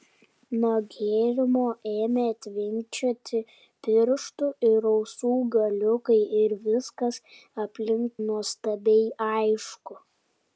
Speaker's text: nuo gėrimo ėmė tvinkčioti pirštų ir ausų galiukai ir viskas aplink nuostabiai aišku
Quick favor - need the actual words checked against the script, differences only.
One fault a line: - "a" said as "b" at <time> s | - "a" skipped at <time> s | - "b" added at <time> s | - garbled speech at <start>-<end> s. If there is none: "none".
none